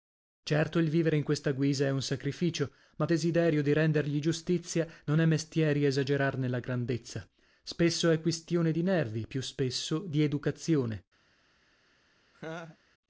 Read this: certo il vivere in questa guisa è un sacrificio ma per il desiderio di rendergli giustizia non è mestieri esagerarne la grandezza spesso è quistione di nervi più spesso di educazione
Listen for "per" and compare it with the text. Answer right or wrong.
wrong